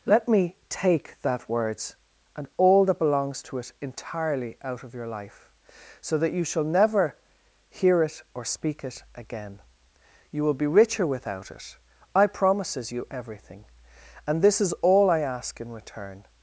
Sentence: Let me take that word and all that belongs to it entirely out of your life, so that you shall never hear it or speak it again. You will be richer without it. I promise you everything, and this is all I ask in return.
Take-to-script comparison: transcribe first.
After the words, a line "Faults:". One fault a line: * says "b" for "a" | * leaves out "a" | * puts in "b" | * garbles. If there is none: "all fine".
Let me take that words and all that belongs to it entirely out of your life, so that you shall never hear it or speak it again. You will be richer without it. I promises you everything, and this is all I ask in return.
Faults:
* says "words" for "word"
* says "promises" for "promise"